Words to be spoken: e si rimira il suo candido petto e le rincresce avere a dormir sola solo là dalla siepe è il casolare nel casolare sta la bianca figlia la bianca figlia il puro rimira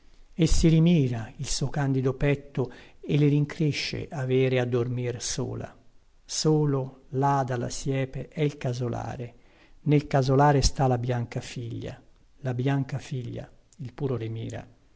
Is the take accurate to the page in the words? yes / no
yes